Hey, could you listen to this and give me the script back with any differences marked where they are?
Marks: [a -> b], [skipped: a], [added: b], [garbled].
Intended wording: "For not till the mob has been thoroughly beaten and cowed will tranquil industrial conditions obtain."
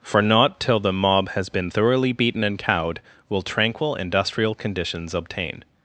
"For not till the mob has been thoroughly beaten and cowed will tranquil industrial conditions obtain."